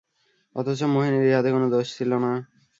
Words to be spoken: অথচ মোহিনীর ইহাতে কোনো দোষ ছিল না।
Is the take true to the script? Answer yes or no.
yes